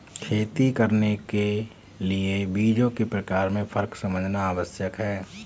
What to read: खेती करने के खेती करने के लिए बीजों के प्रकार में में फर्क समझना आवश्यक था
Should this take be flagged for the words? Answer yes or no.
yes